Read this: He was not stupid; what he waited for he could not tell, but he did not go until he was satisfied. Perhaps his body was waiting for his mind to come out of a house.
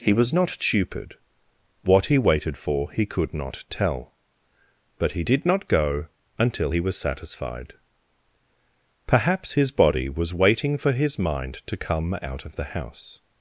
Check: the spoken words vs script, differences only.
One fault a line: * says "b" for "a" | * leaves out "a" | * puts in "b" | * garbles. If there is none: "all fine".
* says "the" for "a"